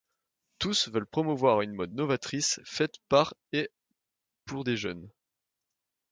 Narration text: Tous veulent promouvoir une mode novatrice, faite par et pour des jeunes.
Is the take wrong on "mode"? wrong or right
right